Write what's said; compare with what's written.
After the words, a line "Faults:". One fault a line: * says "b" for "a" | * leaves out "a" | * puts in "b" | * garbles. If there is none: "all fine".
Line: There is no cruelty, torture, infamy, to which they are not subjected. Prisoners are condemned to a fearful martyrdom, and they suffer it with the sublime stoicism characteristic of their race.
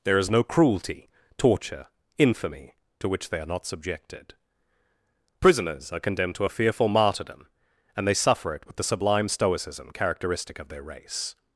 There is no cruelty, torture, infamy, to which they are not subjected. Prisoners are condemned to a fearful martyrdom, and they suffer it with the sublime stoicism characteristic of their race.
Faults:
all fine